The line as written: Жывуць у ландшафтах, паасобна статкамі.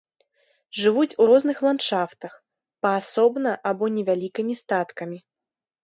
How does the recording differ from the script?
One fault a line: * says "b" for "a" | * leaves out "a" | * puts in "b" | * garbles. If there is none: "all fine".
* puts in "розных"
* puts in "або невялікімі"